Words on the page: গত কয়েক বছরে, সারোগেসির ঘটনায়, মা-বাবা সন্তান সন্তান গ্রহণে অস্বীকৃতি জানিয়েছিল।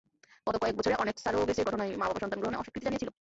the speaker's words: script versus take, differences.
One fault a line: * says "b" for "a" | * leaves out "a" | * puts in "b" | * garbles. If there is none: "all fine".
* puts in "অনেক"
* leaves out "সন্তান"